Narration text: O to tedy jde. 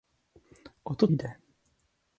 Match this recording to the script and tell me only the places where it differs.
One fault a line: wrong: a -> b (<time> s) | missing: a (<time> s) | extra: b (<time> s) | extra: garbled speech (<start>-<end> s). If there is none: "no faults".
missing: tedy (1.1 s)